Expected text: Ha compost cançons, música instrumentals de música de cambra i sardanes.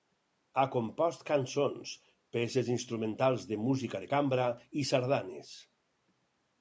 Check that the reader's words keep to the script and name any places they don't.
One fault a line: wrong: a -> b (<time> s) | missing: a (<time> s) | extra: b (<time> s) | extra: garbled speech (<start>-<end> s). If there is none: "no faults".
wrong: música -> peces (2.4 s)